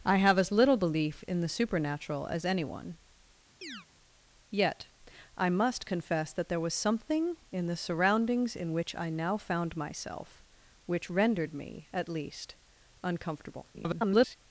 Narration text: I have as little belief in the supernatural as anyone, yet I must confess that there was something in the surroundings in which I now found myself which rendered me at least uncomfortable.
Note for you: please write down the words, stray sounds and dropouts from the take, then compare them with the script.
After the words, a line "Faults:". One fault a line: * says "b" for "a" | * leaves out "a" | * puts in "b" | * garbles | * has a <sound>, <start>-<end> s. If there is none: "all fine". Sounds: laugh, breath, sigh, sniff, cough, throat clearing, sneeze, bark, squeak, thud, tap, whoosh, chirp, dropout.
I have as little belief in the supernatural as anyone, yet I must confess that there was something in the surroundings in which I now found myself which rendered me at least uncomfortable. [garbled]
Faults:
* has a chirp, 3.6-3.9 s
* garbles